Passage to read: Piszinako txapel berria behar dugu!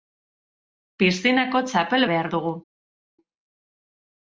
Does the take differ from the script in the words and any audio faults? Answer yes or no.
yes